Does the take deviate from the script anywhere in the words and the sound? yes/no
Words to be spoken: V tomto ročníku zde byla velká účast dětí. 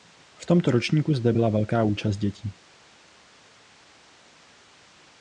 no